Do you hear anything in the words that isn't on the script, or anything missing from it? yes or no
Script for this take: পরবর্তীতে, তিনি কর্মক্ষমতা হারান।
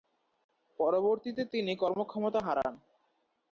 no